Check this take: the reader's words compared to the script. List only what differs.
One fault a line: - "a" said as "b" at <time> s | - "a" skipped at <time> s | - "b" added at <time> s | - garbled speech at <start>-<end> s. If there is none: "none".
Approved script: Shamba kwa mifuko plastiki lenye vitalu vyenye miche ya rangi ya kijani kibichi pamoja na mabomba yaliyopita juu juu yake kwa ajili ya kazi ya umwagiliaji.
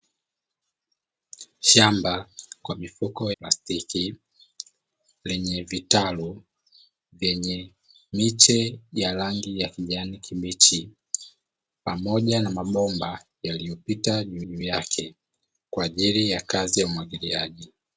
none